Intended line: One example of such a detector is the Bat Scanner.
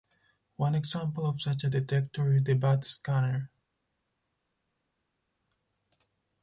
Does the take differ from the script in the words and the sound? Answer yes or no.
no